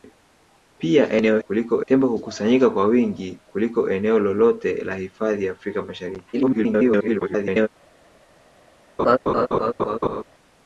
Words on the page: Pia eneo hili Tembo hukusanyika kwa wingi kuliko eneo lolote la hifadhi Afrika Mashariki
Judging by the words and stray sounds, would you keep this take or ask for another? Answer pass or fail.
fail